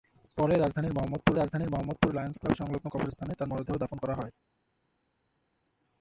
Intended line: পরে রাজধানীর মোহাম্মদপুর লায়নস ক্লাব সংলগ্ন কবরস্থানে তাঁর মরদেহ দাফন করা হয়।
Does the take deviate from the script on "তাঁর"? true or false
false